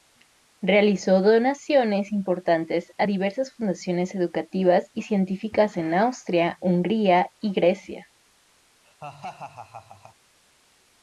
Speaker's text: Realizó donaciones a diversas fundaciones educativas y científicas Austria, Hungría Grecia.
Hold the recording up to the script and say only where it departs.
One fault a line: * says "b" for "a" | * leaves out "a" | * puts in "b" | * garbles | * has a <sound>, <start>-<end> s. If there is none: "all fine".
* puts in "importantes"
* puts in "en"
* puts in "y"
* has a laugh, 8.8-10.2 s